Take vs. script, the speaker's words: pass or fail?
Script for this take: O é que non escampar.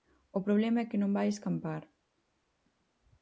fail